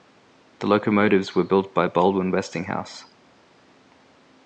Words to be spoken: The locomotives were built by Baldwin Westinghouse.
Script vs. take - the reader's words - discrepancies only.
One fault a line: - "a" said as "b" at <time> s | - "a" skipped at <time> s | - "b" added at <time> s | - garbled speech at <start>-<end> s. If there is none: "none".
none